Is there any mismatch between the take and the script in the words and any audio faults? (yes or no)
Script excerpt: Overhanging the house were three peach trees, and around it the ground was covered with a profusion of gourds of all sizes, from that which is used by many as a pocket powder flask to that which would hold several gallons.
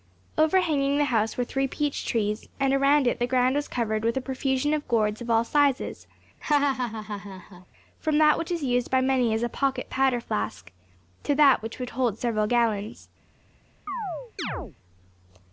yes